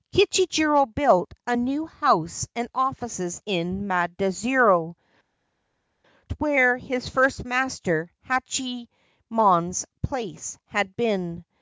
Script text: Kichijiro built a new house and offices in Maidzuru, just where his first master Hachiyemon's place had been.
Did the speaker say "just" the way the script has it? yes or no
no